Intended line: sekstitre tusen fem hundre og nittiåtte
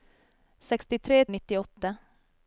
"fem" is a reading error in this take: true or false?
true